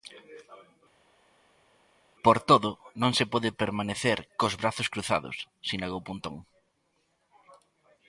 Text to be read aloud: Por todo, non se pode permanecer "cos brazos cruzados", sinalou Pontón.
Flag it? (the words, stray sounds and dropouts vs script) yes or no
no